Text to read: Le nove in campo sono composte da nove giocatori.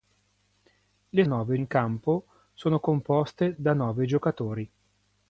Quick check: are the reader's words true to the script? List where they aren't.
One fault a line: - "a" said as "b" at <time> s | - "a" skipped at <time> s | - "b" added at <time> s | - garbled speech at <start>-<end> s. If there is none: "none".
none